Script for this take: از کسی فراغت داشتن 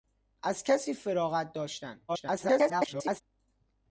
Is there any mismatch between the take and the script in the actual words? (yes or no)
yes